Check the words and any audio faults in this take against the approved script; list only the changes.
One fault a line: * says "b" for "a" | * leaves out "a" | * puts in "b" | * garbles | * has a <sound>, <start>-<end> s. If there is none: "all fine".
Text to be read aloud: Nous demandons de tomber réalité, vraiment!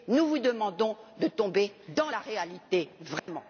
* puts in "vous"
* puts in "dans la"
* has a dropout, 3.2-3.3 s